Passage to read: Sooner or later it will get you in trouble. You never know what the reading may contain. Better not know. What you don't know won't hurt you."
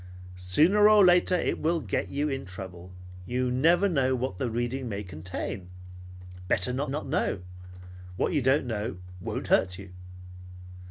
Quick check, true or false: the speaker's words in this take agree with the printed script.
false